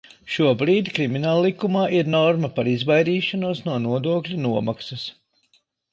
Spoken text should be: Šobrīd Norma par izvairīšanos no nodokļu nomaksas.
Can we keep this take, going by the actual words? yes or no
no